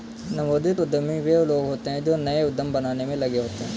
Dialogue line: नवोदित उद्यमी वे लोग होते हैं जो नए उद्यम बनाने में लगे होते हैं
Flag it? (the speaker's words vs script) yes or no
no